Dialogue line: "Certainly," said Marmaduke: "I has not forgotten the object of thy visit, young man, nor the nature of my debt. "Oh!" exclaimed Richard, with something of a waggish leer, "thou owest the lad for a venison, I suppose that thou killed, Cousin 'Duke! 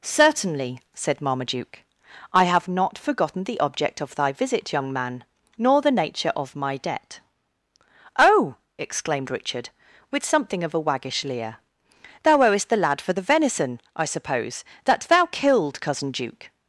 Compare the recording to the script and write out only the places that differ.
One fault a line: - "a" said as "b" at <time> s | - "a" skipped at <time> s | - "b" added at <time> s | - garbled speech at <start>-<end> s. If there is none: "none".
- "has" said as "have" at 2.5 s
- "a" said as "the" at 13.1 s